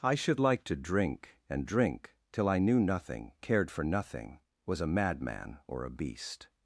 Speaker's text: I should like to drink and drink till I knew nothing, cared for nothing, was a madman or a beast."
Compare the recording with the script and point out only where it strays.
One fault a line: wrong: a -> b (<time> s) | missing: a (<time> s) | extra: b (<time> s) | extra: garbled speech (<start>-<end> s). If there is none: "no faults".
no faults